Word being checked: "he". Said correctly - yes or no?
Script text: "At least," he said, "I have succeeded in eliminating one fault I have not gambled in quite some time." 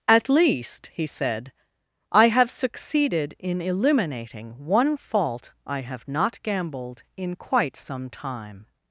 yes